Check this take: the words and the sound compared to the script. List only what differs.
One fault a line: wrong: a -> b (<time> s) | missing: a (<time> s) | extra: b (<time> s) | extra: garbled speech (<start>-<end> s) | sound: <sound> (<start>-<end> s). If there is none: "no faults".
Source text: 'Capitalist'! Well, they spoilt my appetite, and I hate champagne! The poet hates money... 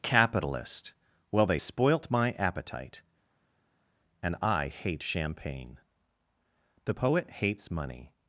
no faults